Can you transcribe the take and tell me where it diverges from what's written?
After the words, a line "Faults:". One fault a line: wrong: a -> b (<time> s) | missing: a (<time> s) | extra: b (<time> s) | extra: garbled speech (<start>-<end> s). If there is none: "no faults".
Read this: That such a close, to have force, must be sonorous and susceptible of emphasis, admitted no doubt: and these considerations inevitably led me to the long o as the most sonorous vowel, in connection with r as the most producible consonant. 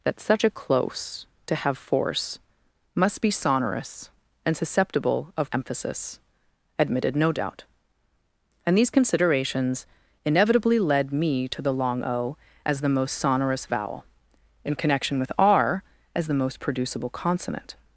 That such a close, to have force, must be sonorous and susceptible of emphasis, admitted no doubt: and these considerations inevitably led me to the long o as the most sonorous vowel, in connection with r as the most producible consonant.
Faults:
no faults